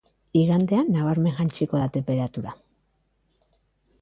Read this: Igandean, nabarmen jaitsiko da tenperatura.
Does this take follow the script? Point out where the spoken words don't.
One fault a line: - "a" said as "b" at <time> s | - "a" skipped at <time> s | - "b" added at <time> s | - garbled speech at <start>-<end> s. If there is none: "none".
none